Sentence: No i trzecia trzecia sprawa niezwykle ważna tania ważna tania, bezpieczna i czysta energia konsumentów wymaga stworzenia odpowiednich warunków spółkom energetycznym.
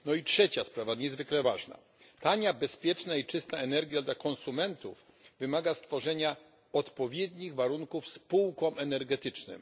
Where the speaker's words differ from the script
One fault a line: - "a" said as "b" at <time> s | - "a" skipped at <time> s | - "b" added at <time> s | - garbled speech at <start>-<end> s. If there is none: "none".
- "trzecia" skipped at 0.6 s
- "ważna tania" skipped at 2.5 s
- "dla" added at 4.0 s